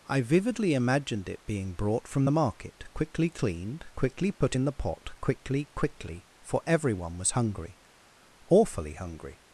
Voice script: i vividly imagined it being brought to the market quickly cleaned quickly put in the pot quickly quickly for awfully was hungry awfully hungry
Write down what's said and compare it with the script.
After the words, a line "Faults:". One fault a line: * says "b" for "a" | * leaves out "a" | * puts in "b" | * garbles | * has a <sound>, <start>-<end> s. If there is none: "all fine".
i vividly imagined it being brought from the market quickly cleaned quickly put in the pot quickly quickly for everyone was hungry awfully hungry
Faults:
* says "from" for "to"
* has a dropout, 4.3-4.4 s
* says "everyone" for "awfully"